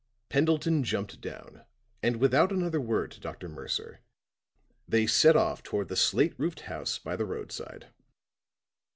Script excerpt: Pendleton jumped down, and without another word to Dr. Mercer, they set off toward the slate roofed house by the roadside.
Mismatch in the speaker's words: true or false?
false